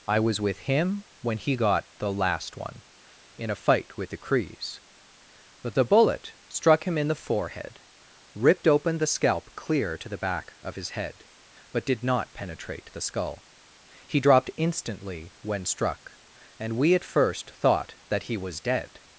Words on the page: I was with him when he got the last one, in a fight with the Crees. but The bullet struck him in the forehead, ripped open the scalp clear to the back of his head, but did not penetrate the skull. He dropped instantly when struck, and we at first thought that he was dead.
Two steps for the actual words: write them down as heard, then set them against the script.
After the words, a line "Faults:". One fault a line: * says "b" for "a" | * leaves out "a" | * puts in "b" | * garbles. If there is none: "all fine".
I was with him when he got the last one, in a fight with the Crees. but The bullet struck him in the forehead, ripped open the scalp clear to the back of his head, but did not penetrate the skull. He dropped instantly when struck, and we at first thought that he was dead.
Faults:
all fine